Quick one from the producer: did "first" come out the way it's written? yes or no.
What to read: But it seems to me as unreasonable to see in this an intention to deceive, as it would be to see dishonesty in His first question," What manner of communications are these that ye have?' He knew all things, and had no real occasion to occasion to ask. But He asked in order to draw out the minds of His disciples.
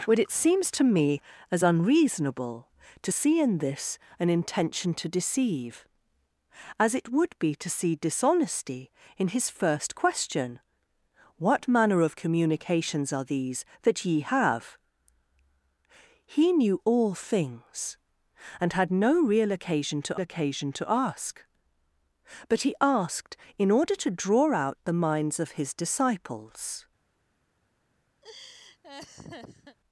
yes